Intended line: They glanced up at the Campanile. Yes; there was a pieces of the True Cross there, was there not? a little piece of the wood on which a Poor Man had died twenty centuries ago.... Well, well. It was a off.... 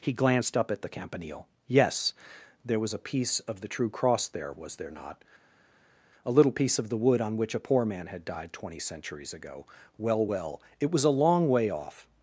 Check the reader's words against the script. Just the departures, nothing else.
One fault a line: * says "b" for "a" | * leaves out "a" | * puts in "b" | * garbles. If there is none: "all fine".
* says "He" for "They"
* says "piece" for "pieces"
* puts in "long way"